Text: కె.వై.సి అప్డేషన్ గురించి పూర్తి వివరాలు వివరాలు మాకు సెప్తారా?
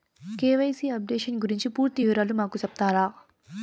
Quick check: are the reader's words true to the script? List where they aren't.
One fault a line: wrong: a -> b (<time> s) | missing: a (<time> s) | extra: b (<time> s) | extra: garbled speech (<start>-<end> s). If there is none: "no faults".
missing: వివరాలు (2.3 s)